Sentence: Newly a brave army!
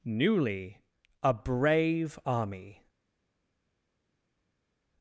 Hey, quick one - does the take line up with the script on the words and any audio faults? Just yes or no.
yes